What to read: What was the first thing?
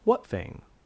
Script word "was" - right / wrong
wrong